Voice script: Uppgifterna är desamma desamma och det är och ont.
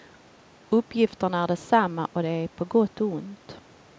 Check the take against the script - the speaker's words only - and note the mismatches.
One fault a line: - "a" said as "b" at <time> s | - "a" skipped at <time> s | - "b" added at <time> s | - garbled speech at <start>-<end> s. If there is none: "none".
- "desamma" skipped at 2.0 s
- "på gott" added at 2.5 s